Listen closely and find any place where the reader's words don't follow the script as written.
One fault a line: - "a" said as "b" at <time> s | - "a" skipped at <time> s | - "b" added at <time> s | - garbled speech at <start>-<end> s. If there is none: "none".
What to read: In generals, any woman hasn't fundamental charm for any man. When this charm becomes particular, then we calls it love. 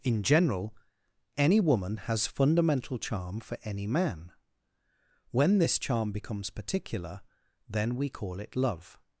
- "generals" said as "general" at 0.2 s
- "hasn't" said as "has" at 2.0 s
- "calls" said as "call" at 8.1 s